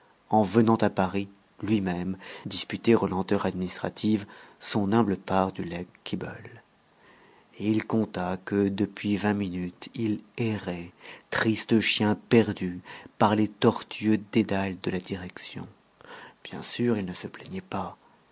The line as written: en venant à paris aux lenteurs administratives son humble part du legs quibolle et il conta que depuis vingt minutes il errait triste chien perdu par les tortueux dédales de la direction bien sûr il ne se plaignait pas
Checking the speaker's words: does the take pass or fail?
fail